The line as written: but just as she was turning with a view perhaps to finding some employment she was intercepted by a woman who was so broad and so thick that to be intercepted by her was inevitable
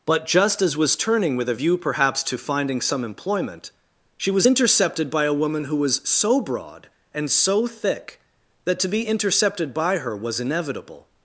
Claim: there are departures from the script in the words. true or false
true